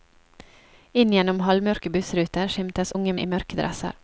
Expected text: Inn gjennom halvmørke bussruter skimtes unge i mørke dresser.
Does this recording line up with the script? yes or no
yes